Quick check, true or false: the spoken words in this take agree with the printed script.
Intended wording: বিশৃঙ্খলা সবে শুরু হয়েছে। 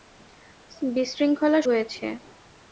false